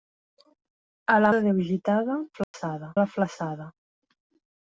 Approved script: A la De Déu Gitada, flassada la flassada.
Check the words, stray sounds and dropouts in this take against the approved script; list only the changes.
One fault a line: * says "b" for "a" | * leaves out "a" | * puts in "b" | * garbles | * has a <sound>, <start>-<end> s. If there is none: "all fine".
* has a dropout, 2.4-2.5 s